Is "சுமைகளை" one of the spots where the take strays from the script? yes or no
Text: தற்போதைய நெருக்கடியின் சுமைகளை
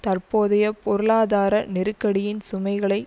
no